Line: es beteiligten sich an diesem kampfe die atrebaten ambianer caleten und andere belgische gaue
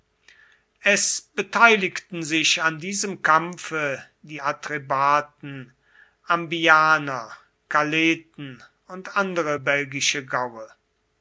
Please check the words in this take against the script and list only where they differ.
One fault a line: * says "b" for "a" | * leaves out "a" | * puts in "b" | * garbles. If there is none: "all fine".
all fine